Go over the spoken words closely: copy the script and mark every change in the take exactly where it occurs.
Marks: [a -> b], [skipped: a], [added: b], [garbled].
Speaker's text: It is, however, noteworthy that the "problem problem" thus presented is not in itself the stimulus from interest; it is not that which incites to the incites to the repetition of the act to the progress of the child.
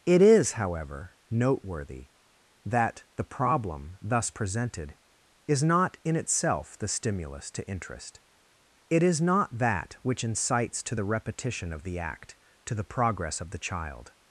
It is, however, noteworthy that the "problem [skipped: problem"] thus presented is not in itself the stimulus [from -> to] interest; it is not that which incites to the [skipped: incites to the] repetition of the act to the progress of the child.